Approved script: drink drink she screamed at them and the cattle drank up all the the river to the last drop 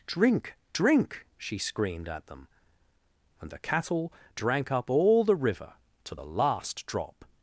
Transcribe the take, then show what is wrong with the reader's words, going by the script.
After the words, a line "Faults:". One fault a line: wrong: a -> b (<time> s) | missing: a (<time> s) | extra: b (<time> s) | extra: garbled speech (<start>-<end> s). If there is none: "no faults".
drink drink she screamed at them and the cattle drank up all the river to the last drop
Faults:
missing: the (5.3 s)